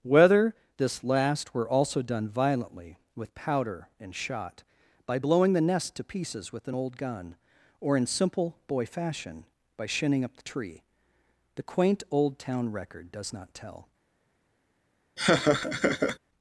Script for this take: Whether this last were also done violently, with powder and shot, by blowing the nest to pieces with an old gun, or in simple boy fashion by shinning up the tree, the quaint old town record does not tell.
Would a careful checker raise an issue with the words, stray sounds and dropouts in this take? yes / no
yes